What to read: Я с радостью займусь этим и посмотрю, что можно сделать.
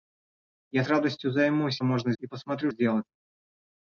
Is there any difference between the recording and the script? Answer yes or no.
yes